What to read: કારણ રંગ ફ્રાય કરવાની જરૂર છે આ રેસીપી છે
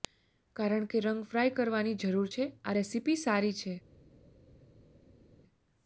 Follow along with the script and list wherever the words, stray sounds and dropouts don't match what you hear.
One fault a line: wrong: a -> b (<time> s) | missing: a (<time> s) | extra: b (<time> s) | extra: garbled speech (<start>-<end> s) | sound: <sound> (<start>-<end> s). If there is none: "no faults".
extra: કે (0.9 s)
extra: સારી (3.2 s)